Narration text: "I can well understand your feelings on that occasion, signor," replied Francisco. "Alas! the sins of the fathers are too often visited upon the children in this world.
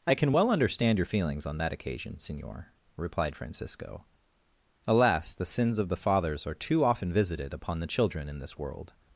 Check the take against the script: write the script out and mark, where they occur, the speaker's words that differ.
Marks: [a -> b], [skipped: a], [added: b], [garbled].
"I can well understand your feelings on that occasion, signor," replied Francisco. "Alas! the sins of the fathers are too often visited upon the children in this world.